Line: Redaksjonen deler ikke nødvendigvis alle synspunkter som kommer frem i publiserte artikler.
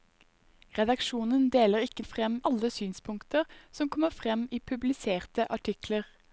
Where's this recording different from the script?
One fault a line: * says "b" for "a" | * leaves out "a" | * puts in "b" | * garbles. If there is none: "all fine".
* says "frem" for "nødvendigvis"